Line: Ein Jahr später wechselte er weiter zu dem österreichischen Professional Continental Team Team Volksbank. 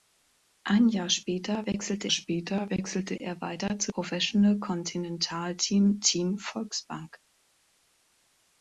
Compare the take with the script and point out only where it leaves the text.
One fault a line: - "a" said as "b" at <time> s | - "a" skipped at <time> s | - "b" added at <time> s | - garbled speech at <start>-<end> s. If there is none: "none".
- "später wechselte" added at 2.1 s
- "dem österreichischen" skipped at 3.9 s